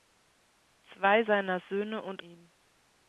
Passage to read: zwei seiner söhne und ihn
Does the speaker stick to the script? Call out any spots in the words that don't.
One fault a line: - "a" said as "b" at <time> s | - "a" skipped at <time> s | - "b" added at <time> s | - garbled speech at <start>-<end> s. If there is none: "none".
none